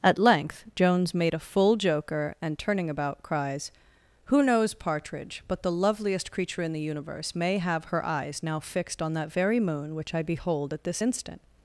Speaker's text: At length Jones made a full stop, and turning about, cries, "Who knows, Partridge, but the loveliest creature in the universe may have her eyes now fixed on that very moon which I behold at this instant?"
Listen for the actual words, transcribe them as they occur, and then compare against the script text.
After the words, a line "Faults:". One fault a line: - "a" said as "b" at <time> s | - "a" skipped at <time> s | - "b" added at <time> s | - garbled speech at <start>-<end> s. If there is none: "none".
At length Jones made a full joker, and turning about, cries, "Who knows, Partridge, but the loveliest creature in the universe may have her eyes now fixed on that very moon which I behold at this instant?"
Faults:
- "stop" said as "joker" at 1.8 s